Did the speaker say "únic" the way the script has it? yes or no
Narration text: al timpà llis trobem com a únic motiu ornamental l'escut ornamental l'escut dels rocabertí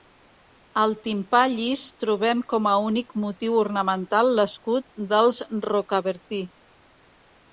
yes